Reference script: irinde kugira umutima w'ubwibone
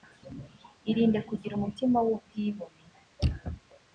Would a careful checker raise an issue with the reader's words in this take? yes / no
no